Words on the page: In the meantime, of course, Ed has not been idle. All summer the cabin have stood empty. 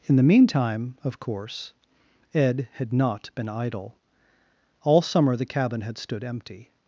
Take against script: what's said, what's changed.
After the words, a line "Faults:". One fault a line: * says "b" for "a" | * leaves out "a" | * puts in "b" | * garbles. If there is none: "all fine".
In the meantime, of course, Ed had not been idle. All summer the cabin had stood empty.
Faults:
* says "had" for "has"
* says "had" for "have"